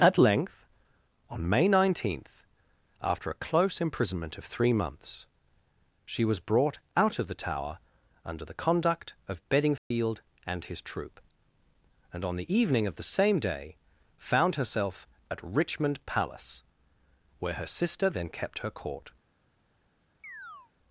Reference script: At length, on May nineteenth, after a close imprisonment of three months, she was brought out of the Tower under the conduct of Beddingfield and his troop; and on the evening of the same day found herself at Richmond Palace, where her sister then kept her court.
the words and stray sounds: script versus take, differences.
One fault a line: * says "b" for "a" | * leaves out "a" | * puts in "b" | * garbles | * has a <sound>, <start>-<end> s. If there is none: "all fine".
* has a dropout, 9.8-9.9 s
* has a chirp, 20.2-20.7 s